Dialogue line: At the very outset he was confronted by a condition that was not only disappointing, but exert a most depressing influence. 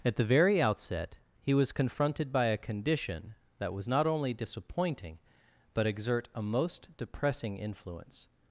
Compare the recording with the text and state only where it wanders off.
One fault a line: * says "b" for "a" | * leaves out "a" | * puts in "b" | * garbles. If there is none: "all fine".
all fine